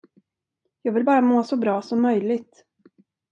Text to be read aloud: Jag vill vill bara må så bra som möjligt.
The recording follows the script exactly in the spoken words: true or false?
false